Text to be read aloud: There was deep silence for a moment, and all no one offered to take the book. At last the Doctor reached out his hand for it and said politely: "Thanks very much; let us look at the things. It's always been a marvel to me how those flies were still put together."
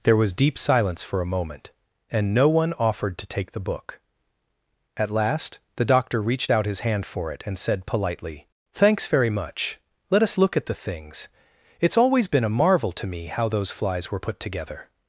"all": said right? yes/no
no